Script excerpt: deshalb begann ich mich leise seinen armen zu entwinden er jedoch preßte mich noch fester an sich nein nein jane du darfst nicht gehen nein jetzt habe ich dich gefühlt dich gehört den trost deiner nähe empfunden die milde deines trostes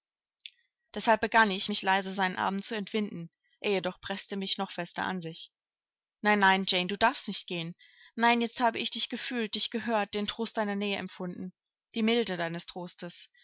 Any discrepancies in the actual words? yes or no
no